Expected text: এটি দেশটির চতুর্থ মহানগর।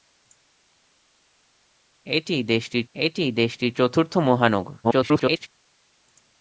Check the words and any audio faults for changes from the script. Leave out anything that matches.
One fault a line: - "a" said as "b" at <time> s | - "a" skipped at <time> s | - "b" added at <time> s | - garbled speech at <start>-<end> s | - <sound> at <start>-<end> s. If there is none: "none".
- "এটি দেশটির" added at 2.9 s
- garbled speech at 4.8-5.5 s